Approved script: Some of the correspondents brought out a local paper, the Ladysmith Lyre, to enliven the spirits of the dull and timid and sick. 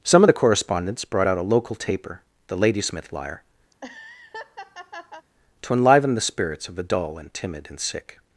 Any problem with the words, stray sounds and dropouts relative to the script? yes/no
yes